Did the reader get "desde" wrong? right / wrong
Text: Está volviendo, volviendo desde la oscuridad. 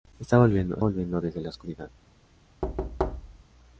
right